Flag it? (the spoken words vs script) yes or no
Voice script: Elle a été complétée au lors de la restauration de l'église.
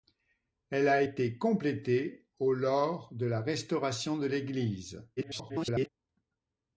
yes